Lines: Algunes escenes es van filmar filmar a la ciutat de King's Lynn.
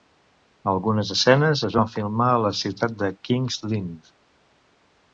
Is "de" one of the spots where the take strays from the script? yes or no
no